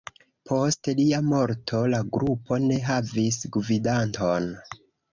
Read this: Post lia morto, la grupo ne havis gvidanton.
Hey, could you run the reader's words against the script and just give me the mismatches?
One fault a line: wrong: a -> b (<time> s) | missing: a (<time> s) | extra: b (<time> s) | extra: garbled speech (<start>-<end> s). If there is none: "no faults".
no faults